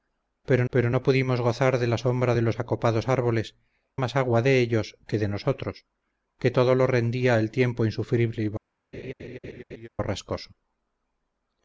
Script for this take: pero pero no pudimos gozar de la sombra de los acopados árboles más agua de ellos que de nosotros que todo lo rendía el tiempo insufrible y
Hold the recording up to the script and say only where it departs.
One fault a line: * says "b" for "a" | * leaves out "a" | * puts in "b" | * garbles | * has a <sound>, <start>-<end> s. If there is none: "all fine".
* has a laugh, 8.9-9.9 s